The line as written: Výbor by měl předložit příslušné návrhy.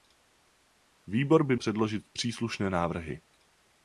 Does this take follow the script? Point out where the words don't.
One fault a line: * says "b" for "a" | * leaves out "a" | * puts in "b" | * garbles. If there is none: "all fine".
* leaves out "měl"